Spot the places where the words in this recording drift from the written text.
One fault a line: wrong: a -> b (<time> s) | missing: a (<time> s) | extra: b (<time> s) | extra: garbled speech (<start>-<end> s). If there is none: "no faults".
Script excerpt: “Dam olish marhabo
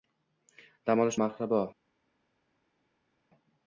no faults